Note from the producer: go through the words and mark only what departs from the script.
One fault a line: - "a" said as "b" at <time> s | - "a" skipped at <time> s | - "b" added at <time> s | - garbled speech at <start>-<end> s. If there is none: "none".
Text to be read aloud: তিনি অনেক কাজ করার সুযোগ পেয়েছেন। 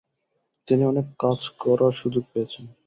none